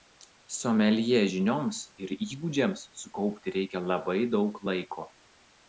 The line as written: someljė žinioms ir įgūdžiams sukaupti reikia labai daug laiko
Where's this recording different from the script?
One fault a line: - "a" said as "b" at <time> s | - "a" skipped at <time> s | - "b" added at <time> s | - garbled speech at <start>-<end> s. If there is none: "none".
none